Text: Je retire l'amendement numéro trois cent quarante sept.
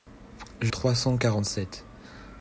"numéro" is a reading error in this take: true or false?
true